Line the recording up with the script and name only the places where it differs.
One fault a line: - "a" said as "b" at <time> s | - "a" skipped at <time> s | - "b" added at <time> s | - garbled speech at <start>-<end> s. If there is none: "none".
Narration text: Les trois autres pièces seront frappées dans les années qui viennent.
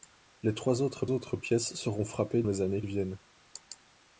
- "autres" added at 1.1 s
- "dans" skipped at 2.4 s
- "qui" skipped at 2.8 s